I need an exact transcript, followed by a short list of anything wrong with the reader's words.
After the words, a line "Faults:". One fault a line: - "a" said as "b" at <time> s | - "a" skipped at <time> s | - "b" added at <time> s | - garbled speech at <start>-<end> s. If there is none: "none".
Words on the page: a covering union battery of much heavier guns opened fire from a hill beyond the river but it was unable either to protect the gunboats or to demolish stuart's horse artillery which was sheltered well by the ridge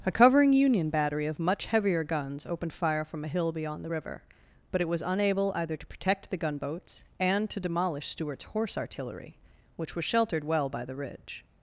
a covering union battery of much heavier guns opened fire from a hill beyond the river but it was unable either to protect the gunboats and to demolish stuart's horse artillery which was sheltered well by the ridge
Faults:
- "or" said as "and" at 7.2 s